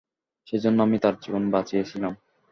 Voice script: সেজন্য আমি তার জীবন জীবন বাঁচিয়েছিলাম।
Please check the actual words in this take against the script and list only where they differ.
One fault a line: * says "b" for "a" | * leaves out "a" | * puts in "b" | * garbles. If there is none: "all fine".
* leaves out "জীবন"